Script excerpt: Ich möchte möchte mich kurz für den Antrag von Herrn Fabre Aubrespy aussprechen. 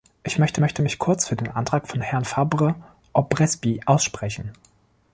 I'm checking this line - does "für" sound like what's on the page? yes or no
yes